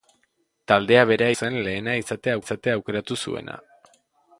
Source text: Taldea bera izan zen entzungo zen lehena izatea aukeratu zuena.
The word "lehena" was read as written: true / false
false